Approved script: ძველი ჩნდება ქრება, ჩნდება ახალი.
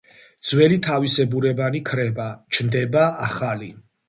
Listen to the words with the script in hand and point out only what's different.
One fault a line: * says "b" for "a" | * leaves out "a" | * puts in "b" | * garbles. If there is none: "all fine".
* says "თავისებურებანი" for "ჩნდება"